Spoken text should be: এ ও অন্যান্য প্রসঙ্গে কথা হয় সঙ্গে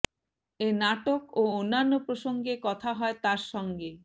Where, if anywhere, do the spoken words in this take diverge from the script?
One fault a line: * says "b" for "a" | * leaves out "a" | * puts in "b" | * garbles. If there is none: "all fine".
* puts in "নাটক"
* puts in "তার"